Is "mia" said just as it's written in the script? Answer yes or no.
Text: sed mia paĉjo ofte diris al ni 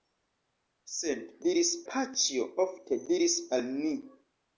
no